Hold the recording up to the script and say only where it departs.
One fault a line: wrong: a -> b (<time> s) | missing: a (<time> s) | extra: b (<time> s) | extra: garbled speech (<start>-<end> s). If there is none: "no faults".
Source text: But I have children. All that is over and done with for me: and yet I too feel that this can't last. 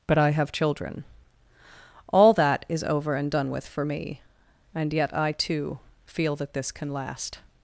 wrong: can't -> can (6.7 s)